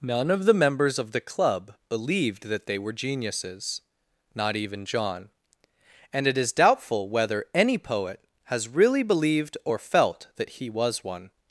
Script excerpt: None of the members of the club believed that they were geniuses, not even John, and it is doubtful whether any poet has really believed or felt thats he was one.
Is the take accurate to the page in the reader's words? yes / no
no